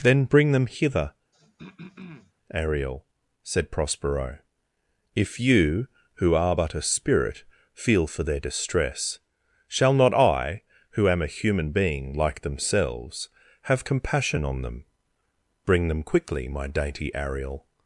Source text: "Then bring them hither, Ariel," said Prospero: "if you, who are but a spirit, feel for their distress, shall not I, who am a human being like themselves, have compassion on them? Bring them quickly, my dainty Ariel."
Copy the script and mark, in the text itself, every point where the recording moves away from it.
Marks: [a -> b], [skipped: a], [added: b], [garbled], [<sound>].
"Then bring them hither, [throat clearing] Ariel," said Prospero: "if you, who are but a spirit, feel for their distress, shall not I, who am a human being like themselves, have compassion on them? Bring them quickly, my dainty Ariel."